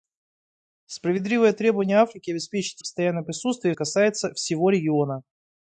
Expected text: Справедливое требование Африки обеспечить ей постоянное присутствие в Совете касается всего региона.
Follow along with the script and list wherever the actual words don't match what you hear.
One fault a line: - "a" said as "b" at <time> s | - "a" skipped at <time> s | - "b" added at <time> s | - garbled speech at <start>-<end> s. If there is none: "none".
- "ей" skipped at 2.8 s
- "Совете" skipped at 3.8 s